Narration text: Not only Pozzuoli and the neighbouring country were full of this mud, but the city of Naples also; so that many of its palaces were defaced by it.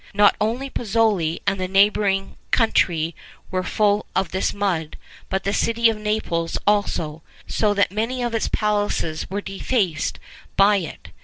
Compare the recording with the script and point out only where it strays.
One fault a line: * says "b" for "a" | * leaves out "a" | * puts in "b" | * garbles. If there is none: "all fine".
all fine